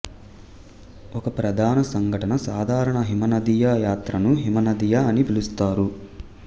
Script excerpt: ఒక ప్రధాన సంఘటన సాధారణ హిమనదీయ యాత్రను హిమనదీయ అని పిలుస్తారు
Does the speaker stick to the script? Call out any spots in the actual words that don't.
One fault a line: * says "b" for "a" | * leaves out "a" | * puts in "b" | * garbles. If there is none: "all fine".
all fine